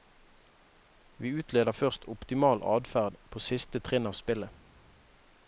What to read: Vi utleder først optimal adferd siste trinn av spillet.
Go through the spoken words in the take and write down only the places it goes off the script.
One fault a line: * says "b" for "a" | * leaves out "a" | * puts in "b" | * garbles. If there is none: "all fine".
* puts in "på"